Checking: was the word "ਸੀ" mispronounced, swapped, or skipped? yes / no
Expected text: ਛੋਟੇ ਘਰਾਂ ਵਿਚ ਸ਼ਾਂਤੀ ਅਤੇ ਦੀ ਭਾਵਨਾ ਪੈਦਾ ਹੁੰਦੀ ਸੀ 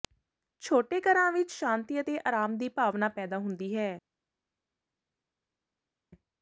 yes